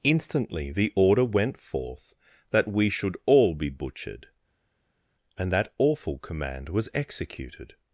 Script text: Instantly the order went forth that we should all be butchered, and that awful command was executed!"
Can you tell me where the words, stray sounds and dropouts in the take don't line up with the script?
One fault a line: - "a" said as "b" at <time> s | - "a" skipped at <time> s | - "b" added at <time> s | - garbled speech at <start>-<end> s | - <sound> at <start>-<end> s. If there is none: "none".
none